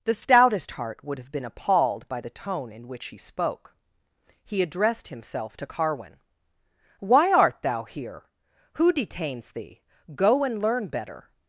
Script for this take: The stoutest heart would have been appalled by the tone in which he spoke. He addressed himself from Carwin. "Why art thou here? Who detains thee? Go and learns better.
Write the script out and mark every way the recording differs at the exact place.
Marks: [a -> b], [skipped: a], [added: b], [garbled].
The stoutest heart would have been appalled by the tone in which he spoke. He addressed himself [from -> to] Carwin. "Why art thou here? Who detains thee? Go and [learns -> learn] better.